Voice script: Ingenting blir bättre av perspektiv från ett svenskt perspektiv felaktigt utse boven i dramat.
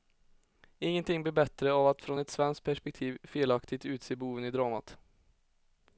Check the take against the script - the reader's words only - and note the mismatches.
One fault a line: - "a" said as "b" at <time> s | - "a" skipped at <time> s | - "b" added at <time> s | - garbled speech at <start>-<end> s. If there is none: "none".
- "perspektiv" said as "att" at 1.9 s